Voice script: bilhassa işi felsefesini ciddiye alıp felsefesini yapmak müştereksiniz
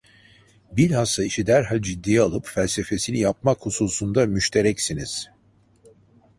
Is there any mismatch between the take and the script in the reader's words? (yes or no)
yes